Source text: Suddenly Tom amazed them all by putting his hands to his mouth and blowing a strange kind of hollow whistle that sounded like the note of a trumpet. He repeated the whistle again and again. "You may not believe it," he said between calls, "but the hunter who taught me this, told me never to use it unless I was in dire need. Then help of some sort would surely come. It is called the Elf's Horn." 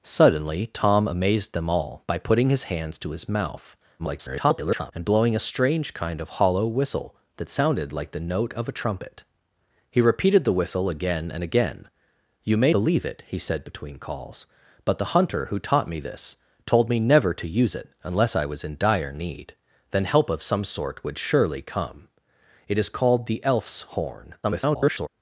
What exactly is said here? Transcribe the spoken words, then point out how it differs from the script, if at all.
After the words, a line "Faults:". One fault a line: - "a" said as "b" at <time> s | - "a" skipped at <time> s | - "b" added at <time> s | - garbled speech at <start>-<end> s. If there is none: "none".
Suddenly Tom amazed them all by putting his hands to his mouth [garbled] and blowing a strange kind of hollow whistle that sounded like the note of a trumpet. He repeated the whistle again and again. "You may believe it," he said between calls, "but the hunter who taught me this, told me never to use it unless I was in dire need. Then help of some sort would surely come. It is called the Elf's Horn." [garbled]
Faults:
- garbled speech at 4.0-4.9 s
- "not" skipped at 12.7 s
- garbled speech at 24.4-25.1 s